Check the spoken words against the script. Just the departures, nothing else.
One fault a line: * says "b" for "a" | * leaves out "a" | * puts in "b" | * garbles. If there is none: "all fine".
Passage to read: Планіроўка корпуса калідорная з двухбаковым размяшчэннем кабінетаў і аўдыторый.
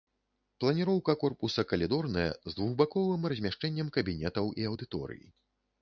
all fine